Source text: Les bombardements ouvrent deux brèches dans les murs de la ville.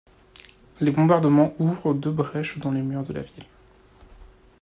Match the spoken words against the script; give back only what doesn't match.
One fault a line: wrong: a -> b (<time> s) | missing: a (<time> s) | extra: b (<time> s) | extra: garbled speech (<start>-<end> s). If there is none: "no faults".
no faults